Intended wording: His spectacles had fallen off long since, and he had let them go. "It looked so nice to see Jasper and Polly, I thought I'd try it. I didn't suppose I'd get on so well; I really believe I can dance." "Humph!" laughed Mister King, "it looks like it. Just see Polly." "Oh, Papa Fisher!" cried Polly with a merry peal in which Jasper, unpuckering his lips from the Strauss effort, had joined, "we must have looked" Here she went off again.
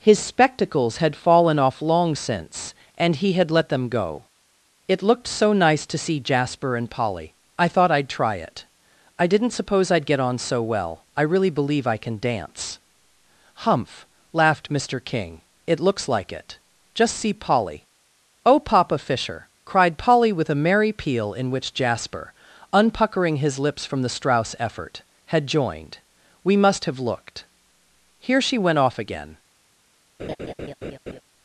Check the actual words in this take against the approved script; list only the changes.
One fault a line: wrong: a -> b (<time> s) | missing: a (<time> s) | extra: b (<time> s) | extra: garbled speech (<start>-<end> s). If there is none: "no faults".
no faults